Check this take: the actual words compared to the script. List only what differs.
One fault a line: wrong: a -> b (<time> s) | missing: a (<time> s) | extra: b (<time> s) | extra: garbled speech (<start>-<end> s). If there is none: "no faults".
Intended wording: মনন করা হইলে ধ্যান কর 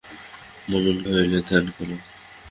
missing: করা (1.0 s)